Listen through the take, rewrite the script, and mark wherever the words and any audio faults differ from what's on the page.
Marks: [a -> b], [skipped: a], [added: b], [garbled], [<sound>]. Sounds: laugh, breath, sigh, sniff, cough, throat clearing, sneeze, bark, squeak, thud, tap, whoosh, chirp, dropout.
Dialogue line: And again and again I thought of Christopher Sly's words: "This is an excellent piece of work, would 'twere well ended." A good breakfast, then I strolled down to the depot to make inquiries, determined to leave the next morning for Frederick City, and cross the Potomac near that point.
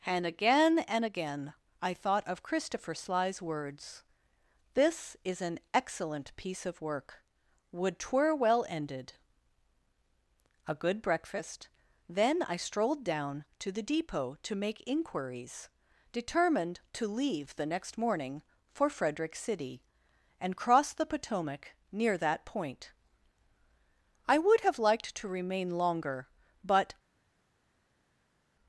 And again and again I thought of Christopher Sly's words: "This is an excellent piece of work, would 'twere well ended." A good breakfast, then I strolled down to the depot to make inquiries, determined to leave the next morning for Frederick City, and cross the Potomac near that point. [added: I would have liked to remain longer but]